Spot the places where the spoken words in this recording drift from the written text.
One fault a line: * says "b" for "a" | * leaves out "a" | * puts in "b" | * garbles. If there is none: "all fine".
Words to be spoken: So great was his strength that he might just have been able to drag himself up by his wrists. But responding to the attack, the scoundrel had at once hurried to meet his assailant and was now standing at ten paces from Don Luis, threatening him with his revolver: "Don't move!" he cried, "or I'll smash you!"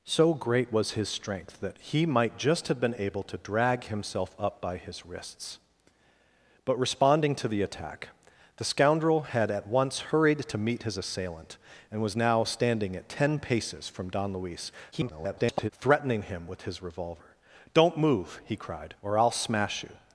* garbles